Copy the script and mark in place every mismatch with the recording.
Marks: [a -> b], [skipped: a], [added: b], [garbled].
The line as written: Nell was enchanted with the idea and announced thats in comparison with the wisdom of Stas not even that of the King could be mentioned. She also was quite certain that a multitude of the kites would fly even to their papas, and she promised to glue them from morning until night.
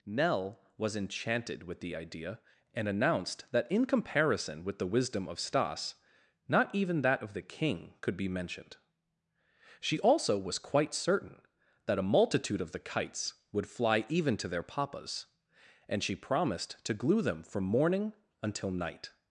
Nell was enchanted with the idea and announced [thats -> that] in comparison with the wisdom of Stas not even that of the King could be mentioned. She also was quite certain that a multitude of the kites would fly even to their papas, and she promised to glue them from morning until night.